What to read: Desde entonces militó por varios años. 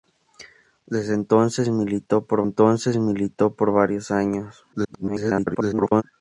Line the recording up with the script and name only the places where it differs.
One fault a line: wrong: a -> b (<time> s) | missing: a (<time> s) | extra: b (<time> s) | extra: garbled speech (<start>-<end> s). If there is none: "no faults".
extra: entonces militó por (2.4 s)
extra: garbled speech (4.7-6.0 s)